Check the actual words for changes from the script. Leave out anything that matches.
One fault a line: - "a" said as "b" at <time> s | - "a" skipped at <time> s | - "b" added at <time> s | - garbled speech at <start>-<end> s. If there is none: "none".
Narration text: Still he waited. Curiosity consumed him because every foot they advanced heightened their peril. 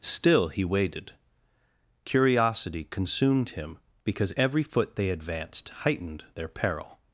none